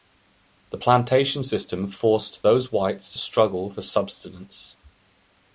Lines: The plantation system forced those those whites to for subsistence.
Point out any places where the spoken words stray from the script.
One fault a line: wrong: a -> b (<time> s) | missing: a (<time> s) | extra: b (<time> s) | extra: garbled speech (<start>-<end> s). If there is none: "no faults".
missing: those (2.7 s)
extra: struggle (3.2 s)